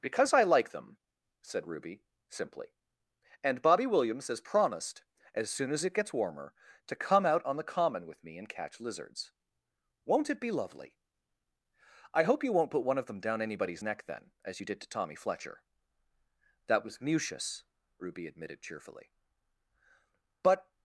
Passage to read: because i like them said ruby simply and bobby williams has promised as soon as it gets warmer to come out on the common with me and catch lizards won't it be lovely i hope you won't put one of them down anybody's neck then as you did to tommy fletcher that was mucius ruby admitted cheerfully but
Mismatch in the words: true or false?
false